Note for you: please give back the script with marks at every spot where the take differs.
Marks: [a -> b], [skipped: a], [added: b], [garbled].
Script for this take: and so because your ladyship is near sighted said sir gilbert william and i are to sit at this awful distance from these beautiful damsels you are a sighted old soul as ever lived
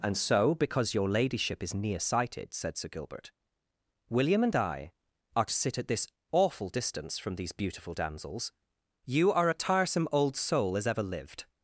and so because your ladyship is near sighted said sir gilbert william and i are to sit at this awful distance from these beautiful damsels you are a [sighted -> tiresome] old soul as ever lived